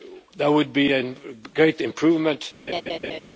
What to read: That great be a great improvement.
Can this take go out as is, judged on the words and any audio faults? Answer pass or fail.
fail